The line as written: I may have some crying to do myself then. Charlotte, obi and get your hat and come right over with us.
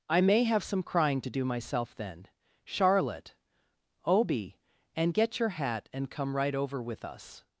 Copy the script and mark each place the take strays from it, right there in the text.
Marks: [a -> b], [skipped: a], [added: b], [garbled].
I may have some crying to do myself then. Charlotte, obi and get your hat and come right over with us.